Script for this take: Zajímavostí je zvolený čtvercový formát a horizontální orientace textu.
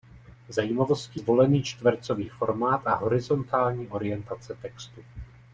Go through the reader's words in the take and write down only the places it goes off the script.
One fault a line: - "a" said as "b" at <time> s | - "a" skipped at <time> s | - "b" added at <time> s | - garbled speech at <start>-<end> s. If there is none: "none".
- "je" skipped at 1.2 s